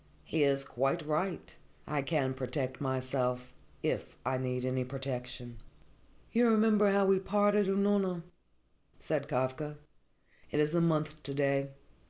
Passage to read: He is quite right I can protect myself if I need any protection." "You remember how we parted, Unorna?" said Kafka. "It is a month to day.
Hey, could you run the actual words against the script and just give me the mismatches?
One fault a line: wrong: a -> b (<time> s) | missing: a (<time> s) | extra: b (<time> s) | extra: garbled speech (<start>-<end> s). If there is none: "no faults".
no faults